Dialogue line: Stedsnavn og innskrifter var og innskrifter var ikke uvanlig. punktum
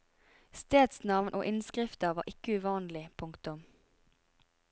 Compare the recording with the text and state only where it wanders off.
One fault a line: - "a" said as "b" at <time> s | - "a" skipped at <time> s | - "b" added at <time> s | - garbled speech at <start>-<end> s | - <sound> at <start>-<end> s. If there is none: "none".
- "og innskrifter var" skipped at 2.2 s